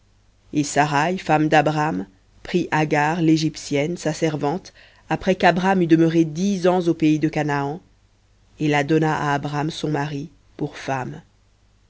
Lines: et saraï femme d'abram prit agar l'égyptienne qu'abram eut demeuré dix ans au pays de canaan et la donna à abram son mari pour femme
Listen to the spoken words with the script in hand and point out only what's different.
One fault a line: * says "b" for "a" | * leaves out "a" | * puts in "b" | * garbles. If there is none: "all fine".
* puts in "sa servante après"